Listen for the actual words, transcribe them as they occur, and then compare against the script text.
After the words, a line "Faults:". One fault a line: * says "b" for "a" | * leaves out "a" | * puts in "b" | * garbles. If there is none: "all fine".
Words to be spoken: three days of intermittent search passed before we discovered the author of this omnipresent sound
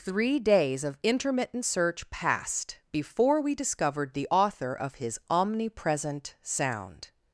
three days of intermittent search passed before we discovered the author of his omnipresent sound
Faults:
* says "his" for "this"